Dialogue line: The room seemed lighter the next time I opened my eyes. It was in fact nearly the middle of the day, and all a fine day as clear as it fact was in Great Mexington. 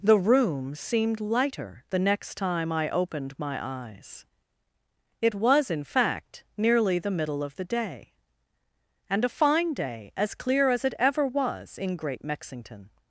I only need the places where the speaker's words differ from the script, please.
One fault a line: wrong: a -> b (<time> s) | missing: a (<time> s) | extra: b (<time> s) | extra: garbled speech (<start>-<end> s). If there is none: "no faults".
missing: all (9.2 s)
wrong: fact -> ever (11.0 s)